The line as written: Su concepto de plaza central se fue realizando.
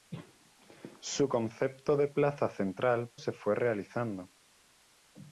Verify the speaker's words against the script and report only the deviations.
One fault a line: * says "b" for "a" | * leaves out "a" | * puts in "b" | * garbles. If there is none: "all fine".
all fine